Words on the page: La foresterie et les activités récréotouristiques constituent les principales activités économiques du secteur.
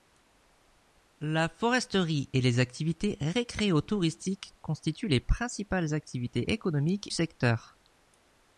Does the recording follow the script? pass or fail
fail